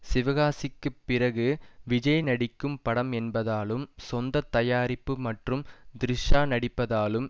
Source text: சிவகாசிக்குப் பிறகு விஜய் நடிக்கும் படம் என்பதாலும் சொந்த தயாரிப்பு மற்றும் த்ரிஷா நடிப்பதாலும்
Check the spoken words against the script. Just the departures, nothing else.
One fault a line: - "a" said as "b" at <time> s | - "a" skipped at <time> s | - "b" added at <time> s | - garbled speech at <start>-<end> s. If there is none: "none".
none